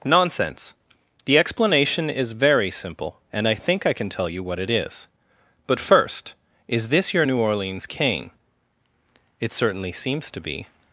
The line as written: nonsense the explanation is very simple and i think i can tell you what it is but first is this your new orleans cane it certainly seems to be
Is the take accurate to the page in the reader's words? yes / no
yes